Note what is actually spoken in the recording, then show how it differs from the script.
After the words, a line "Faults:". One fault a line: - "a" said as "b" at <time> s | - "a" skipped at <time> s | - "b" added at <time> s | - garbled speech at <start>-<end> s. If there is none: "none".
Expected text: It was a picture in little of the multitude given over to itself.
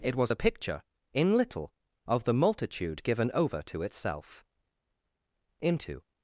It was a picture in little of the multitude given over to itself. Into
Faults:
- "Into" added at 5.6 s